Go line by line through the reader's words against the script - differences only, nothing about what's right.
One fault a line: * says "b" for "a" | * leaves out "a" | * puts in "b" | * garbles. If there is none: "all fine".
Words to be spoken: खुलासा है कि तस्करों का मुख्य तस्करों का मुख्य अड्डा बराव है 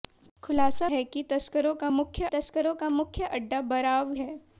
all fine